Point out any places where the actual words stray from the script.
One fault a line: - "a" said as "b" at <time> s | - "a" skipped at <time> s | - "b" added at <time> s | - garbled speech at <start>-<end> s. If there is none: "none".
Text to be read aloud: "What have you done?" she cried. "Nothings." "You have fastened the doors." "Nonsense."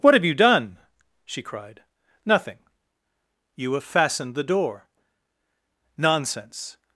- "Nothings" said as "Nothing" at 2.2 s
- "doors" said as "door" at 4.4 s